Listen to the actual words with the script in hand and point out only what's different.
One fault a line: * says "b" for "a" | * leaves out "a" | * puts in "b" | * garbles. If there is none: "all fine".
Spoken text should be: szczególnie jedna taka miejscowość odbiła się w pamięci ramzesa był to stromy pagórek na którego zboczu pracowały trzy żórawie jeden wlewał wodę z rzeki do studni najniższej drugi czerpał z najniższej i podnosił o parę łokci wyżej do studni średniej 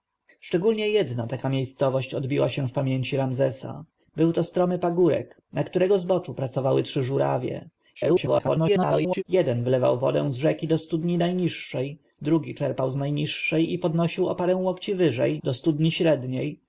* garbles